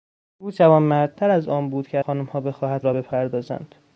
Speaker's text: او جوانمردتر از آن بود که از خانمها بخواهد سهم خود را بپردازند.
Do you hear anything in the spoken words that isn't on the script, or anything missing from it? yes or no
yes